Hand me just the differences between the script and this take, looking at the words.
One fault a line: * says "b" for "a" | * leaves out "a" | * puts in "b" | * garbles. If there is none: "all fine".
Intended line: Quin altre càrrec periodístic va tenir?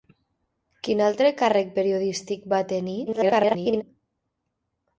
* garbles